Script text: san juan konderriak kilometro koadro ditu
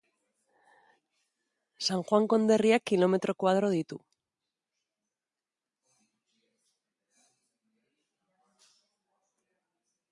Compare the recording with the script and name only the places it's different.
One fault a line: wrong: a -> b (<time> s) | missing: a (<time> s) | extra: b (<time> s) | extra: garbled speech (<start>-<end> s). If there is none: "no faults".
no faults